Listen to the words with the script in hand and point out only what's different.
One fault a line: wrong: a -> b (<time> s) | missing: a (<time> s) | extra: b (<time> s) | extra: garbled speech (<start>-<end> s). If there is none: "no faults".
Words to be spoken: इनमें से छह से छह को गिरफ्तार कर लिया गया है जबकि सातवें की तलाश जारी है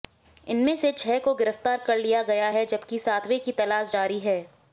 missing: से छह (1.2 s)